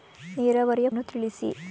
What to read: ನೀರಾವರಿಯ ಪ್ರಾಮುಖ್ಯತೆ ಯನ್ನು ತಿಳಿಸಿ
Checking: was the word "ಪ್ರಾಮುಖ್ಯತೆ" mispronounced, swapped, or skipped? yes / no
yes